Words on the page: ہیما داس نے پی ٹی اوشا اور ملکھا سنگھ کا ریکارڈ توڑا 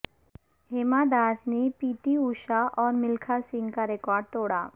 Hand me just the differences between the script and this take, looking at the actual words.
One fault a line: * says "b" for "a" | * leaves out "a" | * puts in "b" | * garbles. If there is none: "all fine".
all fine